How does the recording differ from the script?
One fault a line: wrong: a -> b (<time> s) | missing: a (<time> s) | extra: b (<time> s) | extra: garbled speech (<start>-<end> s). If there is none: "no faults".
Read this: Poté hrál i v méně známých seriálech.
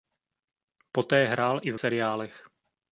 missing: méně známých (1.8 s)